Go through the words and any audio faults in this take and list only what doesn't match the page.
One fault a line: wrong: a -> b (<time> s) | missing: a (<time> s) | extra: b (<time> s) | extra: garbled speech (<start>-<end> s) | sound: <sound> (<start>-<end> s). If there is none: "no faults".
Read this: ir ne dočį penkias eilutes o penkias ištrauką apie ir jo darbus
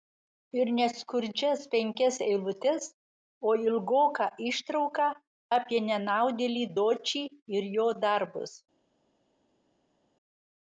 wrong: dočį -> skurdžias (1.0 s)
wrong: penkias -> ilgoką (3.6 s)
extra: nenaudėlį dočį (5.9 s)